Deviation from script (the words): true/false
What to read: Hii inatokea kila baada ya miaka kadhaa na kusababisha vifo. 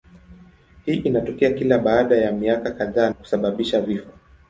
true